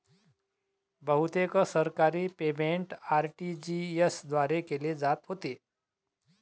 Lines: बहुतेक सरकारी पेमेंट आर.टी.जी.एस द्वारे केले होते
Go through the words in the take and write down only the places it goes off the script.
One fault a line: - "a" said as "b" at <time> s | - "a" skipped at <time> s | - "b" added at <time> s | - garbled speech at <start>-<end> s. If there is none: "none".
- "जात" added at 5.0 s